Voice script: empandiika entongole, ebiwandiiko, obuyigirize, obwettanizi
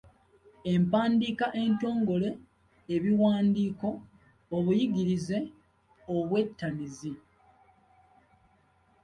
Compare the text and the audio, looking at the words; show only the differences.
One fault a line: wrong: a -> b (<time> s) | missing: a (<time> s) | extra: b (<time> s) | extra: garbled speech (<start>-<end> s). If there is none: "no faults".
no faults